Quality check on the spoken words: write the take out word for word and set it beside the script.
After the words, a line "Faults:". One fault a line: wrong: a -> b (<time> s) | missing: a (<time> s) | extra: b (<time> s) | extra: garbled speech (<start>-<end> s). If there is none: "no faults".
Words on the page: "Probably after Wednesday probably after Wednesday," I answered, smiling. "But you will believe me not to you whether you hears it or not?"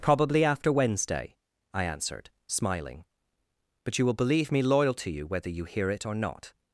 "Probably after Wednesday," I answered, smiling. "But you will believe me loyal to you whether you hear it or not?"
Faults:
missing: probably after Wednesday (1.4 s)
wrong: not -> loyal (4.6 s)
wrong: hears -> hear (5.7 s)